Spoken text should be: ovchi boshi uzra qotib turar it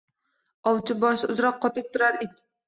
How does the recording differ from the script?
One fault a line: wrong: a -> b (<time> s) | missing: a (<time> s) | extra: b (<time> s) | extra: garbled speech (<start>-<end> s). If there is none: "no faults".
no faults